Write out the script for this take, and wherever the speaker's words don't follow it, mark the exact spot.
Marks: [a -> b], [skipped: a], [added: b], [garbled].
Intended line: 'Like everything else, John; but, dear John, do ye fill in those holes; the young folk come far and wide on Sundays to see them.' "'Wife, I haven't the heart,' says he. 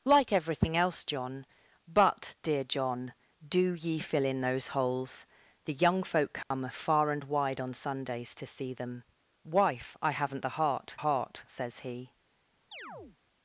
'Like everything else, John; but, dear John, do ye fill in those holes; the young folk come far and wide on Sundays to see them.' "'Wife, I haven't the heart,' [added: heart] says he.